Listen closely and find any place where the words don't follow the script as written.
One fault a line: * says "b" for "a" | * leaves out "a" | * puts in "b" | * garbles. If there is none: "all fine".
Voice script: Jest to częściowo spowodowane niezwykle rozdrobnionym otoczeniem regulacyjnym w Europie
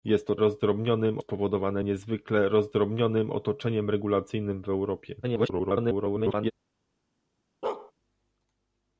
* says "rozdrobnionym" for "częściowo"
* garbles